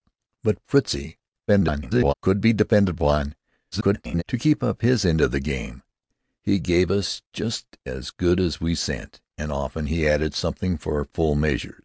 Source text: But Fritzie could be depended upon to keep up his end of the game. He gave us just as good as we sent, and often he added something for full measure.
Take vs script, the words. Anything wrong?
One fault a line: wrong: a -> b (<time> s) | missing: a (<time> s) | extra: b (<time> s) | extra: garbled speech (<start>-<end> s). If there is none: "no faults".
extra: garbled speech (1.5-2.1 s)
extra: garbled speech (3.7-4.2 s)